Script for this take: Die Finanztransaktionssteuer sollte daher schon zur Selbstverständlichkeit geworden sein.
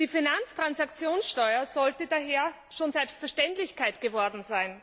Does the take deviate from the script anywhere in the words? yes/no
yes